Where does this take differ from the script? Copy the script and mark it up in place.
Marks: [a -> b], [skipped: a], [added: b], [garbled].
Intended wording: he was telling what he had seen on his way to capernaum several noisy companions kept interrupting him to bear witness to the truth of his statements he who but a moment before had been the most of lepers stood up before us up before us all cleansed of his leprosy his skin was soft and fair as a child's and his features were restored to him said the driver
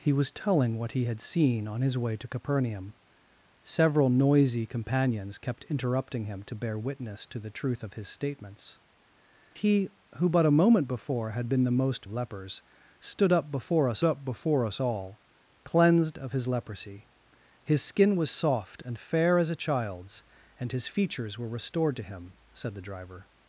he was telling what he had seen on his way to capernaum several noisy companions kept interrupting him to bear witness to the truth of his statements he who but a moment before had been the most of lepers stood up before us up before us all cleansed of his leprosy his skin was soft and fair as a child's and his features were restored to him said the driver